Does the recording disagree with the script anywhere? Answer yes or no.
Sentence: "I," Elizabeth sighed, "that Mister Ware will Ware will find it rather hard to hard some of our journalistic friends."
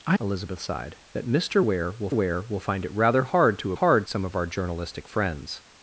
no